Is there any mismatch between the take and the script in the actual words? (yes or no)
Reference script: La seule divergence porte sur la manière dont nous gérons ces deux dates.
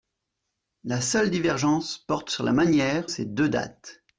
yes